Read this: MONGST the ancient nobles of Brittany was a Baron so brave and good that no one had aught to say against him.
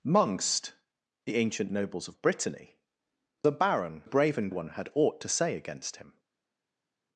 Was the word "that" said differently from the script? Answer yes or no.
yes